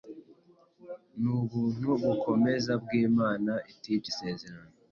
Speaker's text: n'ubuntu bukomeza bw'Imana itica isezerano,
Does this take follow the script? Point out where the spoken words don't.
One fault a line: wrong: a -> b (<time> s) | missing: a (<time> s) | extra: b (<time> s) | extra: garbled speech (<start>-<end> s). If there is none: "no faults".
no faults